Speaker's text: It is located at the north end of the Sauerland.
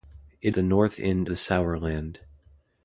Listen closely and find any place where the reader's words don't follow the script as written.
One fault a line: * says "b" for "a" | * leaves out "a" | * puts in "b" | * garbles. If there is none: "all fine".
* leaves out "is located at"
* leaves out "of"